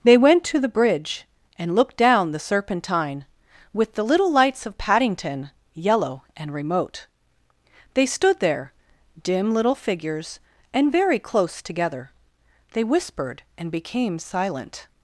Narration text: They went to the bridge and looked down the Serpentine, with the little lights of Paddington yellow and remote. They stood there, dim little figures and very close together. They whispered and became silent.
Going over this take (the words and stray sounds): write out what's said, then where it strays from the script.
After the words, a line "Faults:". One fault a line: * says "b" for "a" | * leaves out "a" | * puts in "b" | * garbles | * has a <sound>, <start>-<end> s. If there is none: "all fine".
They went to the bridge and looked down the Serpentine, with the little lights of Paddington yellow and remote. They stood there, dim little figures and very close together. They whispered and became silent.
Faults:
all fine